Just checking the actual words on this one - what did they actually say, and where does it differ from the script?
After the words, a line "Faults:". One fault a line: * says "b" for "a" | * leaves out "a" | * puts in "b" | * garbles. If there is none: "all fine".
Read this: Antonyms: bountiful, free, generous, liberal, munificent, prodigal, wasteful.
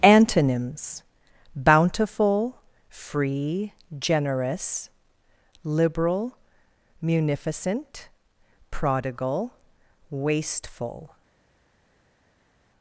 Antonyms: bountiful, free, generous, liberal, munificent, prodigal, wasteful.
Faults:
all fine